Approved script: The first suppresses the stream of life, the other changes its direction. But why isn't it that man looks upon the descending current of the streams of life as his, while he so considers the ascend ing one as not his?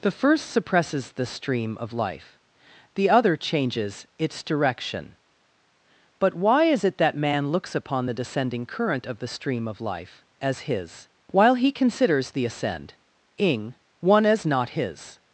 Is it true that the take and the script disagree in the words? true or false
true